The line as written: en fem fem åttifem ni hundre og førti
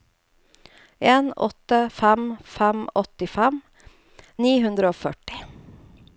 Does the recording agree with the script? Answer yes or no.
no